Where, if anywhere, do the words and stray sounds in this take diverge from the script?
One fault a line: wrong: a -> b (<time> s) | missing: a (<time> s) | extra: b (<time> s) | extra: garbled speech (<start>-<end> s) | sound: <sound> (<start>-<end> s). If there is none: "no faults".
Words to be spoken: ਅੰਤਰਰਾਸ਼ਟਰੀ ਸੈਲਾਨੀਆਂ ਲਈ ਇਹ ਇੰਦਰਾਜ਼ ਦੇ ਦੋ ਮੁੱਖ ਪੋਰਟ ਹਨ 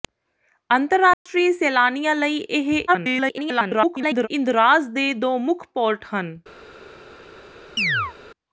sound: dropout (1.1-1.3 s)
extra: garbled speech (2.9-4.3 s)
sound: chirp (7.8-8.1 s)